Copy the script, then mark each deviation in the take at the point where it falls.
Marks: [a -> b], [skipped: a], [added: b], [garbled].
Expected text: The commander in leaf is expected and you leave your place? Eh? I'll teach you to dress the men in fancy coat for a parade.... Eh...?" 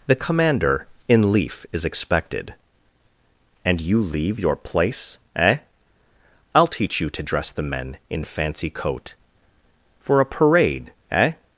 The commander in leaf is expected and you leave your place? Eh? I'll teach you to dress the men in fancy coat for a parade.... Eh...?"